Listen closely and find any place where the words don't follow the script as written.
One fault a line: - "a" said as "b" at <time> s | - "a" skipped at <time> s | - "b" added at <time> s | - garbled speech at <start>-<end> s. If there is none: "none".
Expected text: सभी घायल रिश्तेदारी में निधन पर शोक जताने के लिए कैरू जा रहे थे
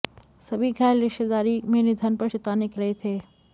- "शोक" skipped at 2.3 s
- "लिए कैरू जा" skipped at 2.8 s